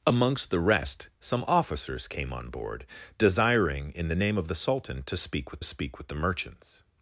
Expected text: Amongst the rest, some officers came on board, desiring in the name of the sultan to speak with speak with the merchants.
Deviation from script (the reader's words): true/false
false